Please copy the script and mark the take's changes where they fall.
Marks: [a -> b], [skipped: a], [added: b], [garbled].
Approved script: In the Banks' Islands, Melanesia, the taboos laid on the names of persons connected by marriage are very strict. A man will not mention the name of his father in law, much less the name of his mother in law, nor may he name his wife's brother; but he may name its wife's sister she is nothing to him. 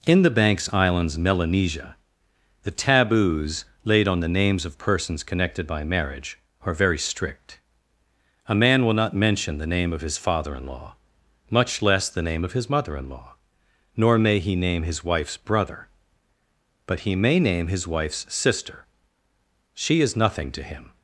In the Banks' Islands, Melanesia, the taboos laid on the names of persons connected by marriage are very strict. A man will not mention the name of his father in law, much less the name of his mother in law, nor may he name his wife's brother; but he may name [its -> his] wife's sister she is nothing to him.